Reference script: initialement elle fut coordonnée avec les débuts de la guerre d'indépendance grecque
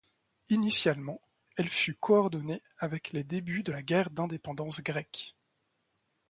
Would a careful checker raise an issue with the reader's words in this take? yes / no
no